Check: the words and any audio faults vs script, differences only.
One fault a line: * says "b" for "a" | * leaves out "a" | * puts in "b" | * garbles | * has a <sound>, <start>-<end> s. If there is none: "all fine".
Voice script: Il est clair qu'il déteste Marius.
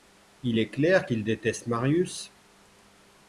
all fine